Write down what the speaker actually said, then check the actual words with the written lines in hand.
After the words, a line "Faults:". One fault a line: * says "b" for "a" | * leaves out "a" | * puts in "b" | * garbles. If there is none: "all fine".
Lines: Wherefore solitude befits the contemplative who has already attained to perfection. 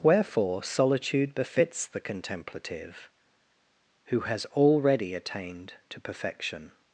Wherefore solitude befits the contemplative who has already attained to perfection.
Faults:
all fine